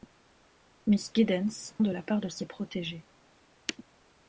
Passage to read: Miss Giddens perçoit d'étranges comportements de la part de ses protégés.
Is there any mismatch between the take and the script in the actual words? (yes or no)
yes